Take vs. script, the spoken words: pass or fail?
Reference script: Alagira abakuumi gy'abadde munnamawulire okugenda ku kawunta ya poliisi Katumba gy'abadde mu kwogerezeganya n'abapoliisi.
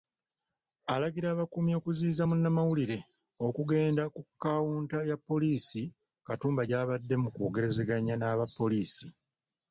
fail